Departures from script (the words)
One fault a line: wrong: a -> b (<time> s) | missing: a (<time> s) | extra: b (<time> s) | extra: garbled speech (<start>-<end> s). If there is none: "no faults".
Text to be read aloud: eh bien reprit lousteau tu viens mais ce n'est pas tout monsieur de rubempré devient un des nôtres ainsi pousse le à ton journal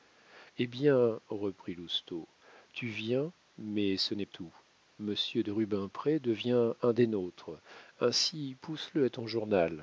missing: pas (4.2 s)